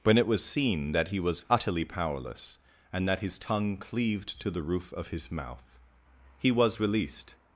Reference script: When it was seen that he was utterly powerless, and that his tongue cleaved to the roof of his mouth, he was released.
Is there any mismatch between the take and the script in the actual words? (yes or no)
no